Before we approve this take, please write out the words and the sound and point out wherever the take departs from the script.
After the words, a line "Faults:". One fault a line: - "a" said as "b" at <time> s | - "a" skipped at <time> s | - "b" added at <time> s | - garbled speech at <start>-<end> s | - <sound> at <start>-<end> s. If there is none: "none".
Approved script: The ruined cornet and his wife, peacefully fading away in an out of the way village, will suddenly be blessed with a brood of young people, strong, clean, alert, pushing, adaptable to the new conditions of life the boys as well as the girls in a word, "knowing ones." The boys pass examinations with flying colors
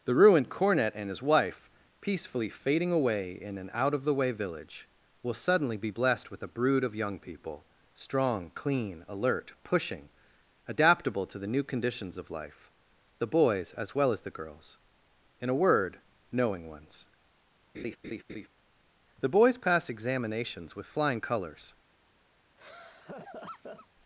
The ruined cornet and his wife, peacefully fading away in an out of the way village, will suddenly be blessed with a brood of young people, strong, clean, alert, pushing, adaptable to the new conditions of life the boys as well as the girls in a word, "knowing ones." The boys pass examinations with flying colors
Faults:
- laugh at 17.7-18.5 s
- laugh at 22.6-23.9 s